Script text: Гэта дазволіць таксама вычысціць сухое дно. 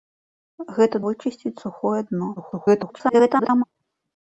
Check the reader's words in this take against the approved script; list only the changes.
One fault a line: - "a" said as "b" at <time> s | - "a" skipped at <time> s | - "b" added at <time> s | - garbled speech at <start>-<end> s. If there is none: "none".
- "дазволіць таксама" skipped at 1.0 s
- garbled speech at 2.4-3.6 s